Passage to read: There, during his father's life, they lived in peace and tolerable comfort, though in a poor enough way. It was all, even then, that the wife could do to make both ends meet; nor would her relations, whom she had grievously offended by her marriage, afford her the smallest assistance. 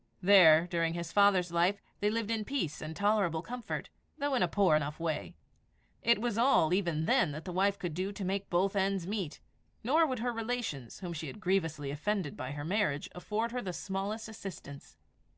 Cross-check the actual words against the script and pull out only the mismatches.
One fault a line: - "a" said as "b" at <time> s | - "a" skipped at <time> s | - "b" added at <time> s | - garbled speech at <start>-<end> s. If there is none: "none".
none